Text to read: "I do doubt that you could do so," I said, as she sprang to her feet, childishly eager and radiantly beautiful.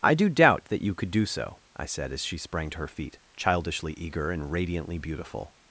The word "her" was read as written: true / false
true